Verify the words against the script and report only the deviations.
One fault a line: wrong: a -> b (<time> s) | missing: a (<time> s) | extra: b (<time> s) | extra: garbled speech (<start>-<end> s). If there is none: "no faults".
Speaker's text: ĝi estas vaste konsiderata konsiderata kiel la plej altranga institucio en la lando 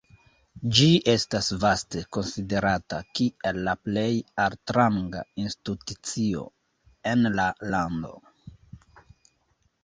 missing: konsiderata (3.0 s)